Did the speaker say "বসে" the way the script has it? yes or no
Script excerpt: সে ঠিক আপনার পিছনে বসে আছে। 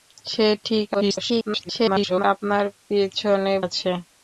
no